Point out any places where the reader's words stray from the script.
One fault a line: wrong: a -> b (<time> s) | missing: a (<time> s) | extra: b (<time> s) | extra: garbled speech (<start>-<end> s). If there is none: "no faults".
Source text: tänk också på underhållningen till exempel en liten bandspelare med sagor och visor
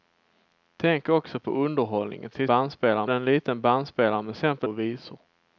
wrong: exempel -> bandspelare (2.5 s)
wrong: sagor -> exempel (4.3 s)